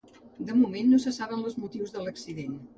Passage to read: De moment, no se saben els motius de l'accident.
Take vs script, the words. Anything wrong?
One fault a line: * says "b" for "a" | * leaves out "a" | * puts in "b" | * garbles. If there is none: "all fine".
all fine